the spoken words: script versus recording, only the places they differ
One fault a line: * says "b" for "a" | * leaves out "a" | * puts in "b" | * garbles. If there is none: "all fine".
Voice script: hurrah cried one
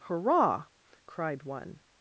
all fine